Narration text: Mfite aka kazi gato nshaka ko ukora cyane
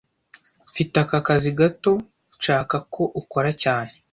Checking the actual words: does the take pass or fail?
pass